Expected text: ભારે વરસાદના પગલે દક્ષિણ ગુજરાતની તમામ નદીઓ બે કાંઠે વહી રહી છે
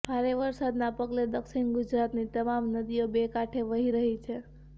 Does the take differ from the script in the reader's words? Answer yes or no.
no